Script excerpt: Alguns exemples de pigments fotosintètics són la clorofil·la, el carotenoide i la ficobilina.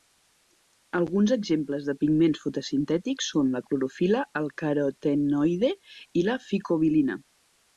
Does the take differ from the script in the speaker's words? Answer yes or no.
no